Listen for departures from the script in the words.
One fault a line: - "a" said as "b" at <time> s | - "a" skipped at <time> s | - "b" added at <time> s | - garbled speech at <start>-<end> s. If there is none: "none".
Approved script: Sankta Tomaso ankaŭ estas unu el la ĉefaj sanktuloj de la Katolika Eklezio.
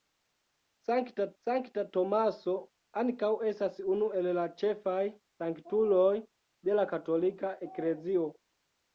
- "sankta" added at 1.4 s